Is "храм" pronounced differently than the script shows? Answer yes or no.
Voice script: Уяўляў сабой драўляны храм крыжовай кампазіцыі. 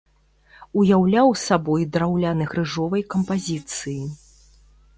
yes